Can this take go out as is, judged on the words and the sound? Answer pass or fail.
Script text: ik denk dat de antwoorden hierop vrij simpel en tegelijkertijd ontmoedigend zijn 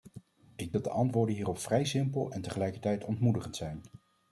fail